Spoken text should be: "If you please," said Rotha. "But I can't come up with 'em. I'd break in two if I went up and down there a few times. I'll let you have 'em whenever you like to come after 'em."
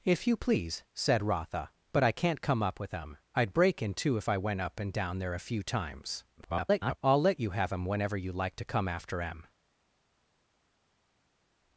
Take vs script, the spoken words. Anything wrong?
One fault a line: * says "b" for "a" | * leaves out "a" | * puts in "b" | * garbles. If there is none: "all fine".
* garbles